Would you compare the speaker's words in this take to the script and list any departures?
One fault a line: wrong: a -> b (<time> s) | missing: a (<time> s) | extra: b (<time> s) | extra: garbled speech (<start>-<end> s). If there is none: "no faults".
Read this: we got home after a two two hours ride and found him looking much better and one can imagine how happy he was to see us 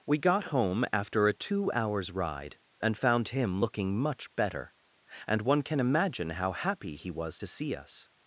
missing: two (1.7 s)